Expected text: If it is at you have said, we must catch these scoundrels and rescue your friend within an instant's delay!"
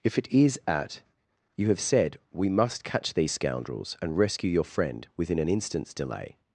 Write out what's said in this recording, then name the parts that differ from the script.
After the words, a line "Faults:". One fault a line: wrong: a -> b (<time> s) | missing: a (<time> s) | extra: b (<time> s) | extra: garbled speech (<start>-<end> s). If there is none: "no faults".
If it is at you have said, we must catch these scoundrels and rescue your friend within an instant's delay!"
Faults:
no faults